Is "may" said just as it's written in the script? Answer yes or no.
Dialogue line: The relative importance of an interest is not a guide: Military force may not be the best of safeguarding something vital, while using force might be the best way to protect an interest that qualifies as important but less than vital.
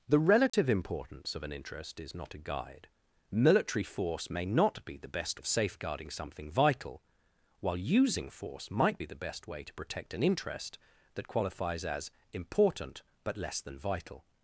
yes